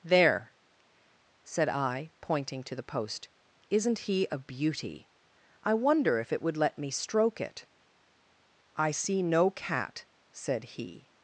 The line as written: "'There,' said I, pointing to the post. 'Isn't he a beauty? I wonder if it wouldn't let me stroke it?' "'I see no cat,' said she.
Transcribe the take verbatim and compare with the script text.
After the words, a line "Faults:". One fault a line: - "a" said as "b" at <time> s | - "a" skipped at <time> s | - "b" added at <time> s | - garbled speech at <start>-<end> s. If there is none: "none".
"'There,' said I, pointing to the post. 'Isn't he a beauty? I wonder if it would let me stroke it?' "'I see no cat,' said he.
Faults:
- "wouldn't" said as "would" at 6.4 s
- "she" said as "he" at 10.8 s